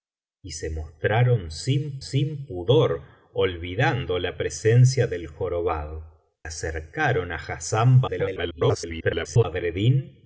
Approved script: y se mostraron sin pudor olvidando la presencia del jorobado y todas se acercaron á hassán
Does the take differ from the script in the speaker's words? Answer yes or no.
yes